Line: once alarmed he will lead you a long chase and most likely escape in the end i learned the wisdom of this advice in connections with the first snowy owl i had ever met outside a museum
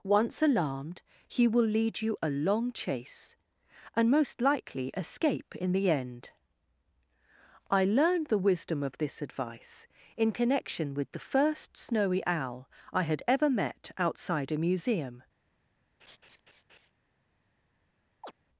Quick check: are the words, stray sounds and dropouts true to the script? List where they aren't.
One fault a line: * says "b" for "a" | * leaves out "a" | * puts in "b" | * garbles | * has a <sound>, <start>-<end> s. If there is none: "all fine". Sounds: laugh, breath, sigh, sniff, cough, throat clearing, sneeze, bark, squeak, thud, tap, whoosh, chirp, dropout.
* says "connection" for "connections"
* has a laugh, 16.0-16.9 s
* has a chirp, 18.2-18.3 s